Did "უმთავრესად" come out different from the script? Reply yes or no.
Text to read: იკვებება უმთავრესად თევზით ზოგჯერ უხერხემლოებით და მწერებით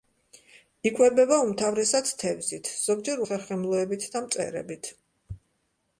no